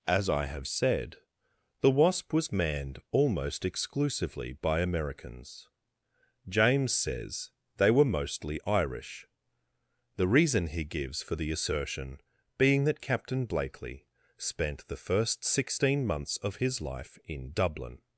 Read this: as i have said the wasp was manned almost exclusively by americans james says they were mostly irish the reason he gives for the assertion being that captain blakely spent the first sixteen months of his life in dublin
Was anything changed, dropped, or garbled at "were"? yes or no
no